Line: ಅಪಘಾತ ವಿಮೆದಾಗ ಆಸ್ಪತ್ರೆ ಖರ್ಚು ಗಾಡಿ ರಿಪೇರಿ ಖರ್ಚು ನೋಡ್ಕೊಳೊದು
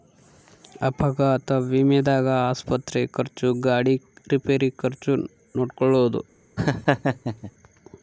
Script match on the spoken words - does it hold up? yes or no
yes